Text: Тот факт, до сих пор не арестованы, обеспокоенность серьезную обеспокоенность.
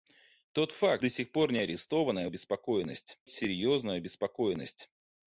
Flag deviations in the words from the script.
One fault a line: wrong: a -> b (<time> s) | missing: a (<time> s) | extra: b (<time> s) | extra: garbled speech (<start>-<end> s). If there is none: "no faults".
no faults